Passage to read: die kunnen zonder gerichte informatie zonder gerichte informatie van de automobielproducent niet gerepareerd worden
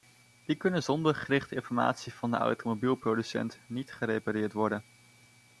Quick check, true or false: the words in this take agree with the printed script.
false